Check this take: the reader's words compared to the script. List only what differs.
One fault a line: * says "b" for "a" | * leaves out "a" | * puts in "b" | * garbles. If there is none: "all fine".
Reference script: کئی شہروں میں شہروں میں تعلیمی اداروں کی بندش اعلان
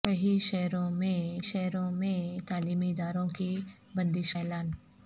all fine